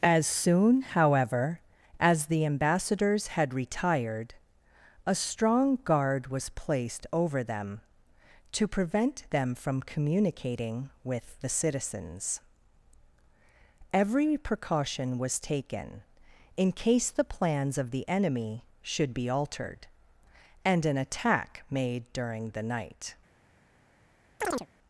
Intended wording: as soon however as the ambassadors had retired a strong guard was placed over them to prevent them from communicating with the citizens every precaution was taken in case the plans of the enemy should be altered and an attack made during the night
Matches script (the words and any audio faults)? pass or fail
fail